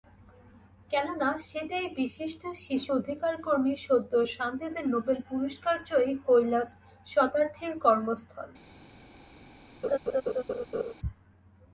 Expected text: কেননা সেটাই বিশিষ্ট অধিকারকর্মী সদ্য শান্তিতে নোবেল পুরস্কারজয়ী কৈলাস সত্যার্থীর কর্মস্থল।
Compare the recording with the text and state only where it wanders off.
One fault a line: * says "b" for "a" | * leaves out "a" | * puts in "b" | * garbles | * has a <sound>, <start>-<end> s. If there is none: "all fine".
* puts in "শিশু"
* has a laugh, 9.8-10.9 s